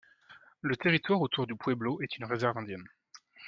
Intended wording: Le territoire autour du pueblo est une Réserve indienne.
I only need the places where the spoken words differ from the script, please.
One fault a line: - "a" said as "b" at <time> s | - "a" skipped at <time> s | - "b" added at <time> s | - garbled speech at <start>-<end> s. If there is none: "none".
none